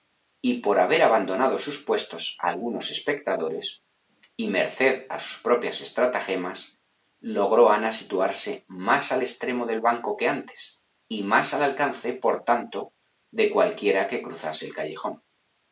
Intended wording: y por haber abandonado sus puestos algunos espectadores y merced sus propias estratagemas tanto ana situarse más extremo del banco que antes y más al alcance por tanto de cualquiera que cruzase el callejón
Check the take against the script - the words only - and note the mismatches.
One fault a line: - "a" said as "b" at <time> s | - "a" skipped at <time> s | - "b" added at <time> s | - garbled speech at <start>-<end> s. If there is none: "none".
- "a" added at 5.1 s
- "tanto" said as "logró" at 7.2 s
- "al" added at 9.1 s